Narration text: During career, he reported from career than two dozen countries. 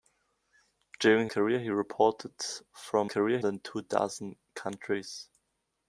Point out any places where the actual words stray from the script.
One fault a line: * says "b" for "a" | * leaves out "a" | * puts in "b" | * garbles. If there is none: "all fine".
all fine